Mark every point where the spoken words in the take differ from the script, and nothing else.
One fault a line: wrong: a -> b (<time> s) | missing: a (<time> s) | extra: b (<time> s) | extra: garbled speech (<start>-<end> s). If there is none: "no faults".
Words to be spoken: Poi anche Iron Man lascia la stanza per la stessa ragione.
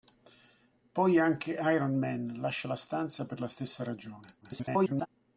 extra: garbled speech (4.4-5.1 s)